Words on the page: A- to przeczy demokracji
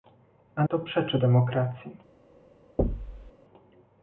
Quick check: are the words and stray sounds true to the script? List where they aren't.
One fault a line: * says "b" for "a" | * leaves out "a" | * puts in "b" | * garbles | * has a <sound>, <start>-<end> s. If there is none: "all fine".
* has a thud, 2.8-3.3 s